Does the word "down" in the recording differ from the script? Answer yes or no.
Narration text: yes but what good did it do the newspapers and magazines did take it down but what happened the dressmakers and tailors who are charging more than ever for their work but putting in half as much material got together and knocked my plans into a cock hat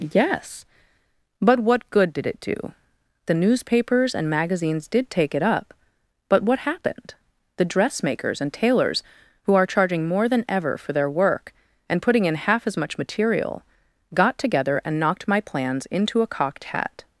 yes